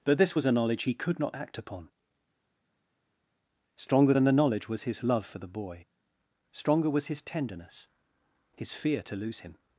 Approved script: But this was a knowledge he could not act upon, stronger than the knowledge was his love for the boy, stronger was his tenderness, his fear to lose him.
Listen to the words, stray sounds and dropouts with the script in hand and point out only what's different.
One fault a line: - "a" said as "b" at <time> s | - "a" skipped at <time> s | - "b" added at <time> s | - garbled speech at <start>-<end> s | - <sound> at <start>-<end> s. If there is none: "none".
none